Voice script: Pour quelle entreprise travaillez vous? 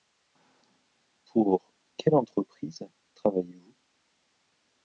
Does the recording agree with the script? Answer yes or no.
yes